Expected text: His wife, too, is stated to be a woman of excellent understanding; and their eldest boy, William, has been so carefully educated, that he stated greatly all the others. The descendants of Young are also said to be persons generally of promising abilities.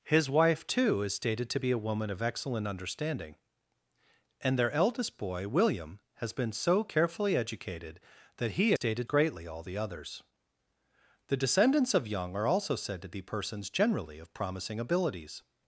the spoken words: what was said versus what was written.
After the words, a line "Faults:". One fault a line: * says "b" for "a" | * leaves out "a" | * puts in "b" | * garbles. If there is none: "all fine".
His wife, too, is stated to be a woman of excellent understanding; and their eldest boy, William, has been so carefully educated, that he stated greatly all the others. The descendants of Young are also said to be persons generally of promising abilities.
Faults:
all fine